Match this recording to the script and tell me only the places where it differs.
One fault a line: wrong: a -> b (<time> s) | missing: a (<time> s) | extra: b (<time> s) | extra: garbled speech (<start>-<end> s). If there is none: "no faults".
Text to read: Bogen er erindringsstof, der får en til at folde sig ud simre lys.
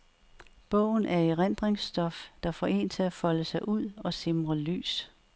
extra: og (4.0 s)